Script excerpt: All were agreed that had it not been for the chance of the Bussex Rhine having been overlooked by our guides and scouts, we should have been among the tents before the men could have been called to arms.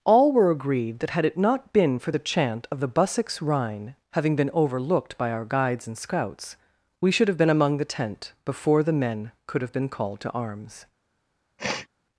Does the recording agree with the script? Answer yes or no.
no